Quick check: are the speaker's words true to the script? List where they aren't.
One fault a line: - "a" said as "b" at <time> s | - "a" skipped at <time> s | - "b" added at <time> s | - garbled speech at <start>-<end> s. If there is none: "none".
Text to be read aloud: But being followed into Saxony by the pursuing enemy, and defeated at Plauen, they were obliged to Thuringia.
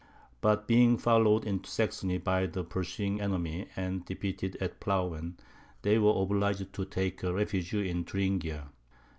- "take refuge in" added at 6.8 s